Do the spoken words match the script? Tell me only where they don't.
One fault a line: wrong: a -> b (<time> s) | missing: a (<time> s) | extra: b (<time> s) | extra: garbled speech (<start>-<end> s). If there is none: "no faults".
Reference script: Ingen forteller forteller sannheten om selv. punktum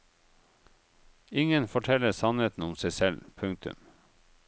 missing: forteller (2.1 s)
extra: seg (2.8 s)